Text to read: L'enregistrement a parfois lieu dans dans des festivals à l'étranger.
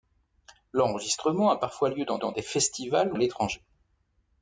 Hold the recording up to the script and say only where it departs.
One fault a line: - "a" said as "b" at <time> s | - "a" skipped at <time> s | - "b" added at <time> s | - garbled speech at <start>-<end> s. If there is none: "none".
none